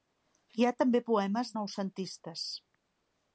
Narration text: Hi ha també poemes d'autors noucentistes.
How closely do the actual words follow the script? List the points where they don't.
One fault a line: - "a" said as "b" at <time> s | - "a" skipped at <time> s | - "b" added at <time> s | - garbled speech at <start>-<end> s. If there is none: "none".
- "d'autors" skipped at 1.5 s